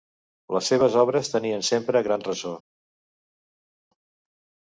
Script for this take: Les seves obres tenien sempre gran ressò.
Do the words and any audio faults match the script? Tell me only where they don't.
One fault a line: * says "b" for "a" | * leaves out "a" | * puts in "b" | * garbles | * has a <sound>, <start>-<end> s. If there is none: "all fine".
all fine